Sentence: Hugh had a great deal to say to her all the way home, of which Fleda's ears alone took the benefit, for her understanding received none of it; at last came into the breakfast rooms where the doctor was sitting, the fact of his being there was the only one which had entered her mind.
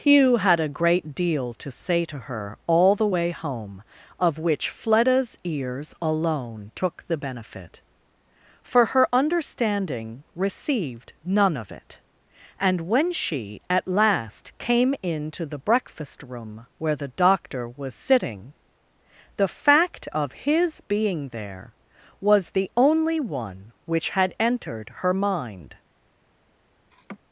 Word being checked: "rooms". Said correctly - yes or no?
no